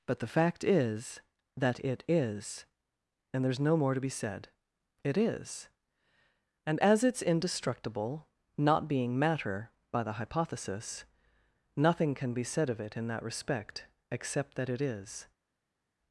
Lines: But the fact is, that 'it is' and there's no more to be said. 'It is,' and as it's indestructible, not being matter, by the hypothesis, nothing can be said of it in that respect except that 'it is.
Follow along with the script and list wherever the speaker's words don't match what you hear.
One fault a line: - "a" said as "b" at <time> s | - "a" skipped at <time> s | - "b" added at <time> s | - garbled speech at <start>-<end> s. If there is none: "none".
none